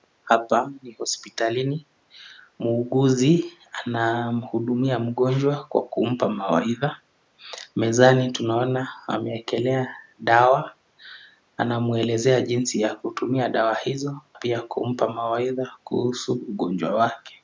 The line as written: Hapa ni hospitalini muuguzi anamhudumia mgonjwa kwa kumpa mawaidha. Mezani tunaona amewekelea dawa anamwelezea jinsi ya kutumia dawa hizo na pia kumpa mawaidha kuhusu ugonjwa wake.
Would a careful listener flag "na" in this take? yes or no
yes